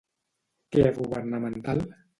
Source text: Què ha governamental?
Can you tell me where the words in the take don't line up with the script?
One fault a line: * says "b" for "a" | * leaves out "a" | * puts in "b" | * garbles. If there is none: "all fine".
all fine